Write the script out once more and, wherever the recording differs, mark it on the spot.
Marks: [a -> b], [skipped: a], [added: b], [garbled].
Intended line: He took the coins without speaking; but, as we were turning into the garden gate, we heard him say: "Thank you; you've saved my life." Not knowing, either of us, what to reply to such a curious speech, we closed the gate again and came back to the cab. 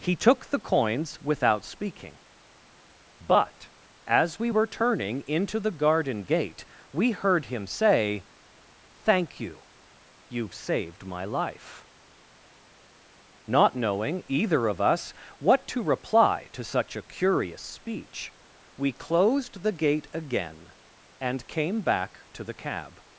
He took the coins without speaking; but, as we were turning into the garden gate, we heard him say: "Thank you; you've saved my life." Not knowing, either of us, what to reply to such a curious speech, we closed the gate again and came back to the cab.